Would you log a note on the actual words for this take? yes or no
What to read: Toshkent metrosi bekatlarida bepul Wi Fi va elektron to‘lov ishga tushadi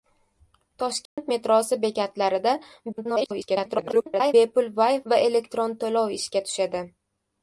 yes